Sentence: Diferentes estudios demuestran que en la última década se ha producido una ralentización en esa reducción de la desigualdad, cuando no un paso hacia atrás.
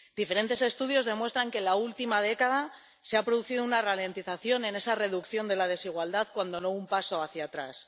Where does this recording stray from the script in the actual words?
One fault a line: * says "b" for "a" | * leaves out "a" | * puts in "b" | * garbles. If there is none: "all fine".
all fine